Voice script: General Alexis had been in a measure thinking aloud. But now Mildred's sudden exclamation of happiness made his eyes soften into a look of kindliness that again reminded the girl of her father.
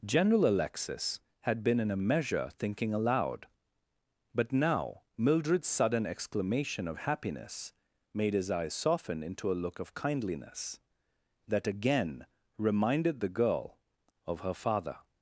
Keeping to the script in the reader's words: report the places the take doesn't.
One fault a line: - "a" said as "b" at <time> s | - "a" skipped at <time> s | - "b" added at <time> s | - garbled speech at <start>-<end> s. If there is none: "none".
none